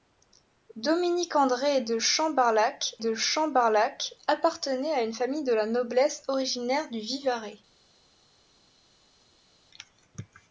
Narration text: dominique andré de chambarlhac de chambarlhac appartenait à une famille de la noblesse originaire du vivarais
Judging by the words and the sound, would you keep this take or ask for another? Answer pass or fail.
pass